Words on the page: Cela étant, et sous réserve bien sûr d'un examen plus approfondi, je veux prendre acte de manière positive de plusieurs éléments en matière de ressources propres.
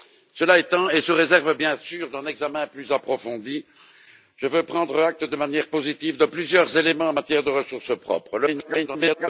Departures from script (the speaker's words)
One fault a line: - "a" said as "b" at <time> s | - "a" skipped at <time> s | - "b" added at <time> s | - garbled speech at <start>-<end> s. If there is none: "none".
- garbled speech at 8.5-9.3 s